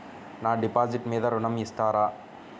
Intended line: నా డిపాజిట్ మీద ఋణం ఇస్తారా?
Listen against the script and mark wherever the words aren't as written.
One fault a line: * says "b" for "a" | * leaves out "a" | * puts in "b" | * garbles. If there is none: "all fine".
all fine